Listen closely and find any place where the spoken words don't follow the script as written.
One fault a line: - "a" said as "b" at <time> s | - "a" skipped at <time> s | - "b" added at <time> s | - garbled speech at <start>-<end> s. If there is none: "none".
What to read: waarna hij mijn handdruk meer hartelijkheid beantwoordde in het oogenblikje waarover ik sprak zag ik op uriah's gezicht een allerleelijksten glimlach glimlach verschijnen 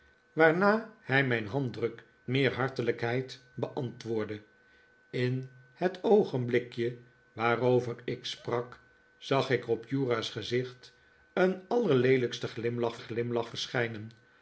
none